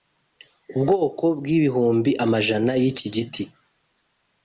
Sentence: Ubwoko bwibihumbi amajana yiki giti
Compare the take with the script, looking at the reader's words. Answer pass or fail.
pass